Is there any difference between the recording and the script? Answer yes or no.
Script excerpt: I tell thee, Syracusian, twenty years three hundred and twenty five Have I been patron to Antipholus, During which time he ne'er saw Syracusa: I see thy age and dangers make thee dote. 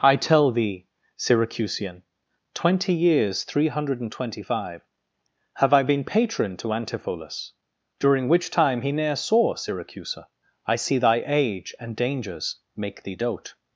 no